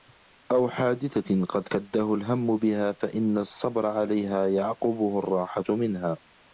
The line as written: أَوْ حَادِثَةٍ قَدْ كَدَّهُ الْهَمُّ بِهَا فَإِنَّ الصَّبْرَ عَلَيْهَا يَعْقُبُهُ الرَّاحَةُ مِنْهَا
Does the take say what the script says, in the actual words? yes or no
yes